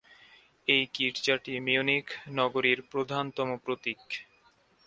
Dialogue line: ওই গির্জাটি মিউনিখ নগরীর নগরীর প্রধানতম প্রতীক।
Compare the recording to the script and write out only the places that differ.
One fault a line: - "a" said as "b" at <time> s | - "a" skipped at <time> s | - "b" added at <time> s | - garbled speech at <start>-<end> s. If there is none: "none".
- "ওই" said as "এই" at 0.7 s
- "নগরীর" skipped at 2.8 s